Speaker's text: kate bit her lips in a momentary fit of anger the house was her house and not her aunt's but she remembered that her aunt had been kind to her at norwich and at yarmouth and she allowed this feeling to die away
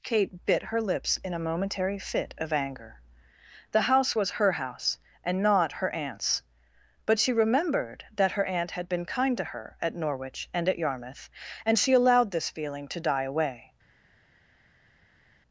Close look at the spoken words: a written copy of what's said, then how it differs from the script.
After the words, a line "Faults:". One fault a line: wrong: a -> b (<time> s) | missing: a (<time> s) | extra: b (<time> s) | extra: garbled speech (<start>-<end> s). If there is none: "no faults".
kate bit her lips in a momentary fit of anger the house was her house and not her aunt's but she remembered that her aunt had been kind to her at norwich and at yarmouth and she allowed this feeling to die away
Faults:
no faults